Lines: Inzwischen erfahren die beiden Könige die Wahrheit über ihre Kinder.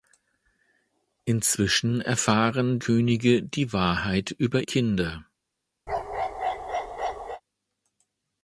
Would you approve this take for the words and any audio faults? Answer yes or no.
no